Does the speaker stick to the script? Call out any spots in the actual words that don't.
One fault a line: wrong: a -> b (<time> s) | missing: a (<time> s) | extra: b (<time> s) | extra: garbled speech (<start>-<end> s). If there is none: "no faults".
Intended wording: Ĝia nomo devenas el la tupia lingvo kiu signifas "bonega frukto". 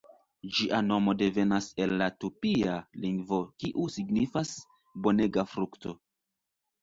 no faults